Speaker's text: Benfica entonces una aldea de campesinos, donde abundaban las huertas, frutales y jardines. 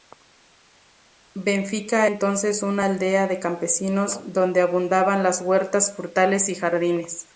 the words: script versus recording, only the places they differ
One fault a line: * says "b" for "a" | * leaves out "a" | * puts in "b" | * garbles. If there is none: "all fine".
all fine